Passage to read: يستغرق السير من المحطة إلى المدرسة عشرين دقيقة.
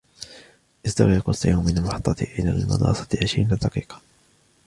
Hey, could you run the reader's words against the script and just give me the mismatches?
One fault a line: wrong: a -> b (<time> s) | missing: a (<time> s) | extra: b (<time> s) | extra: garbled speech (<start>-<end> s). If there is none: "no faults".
no faults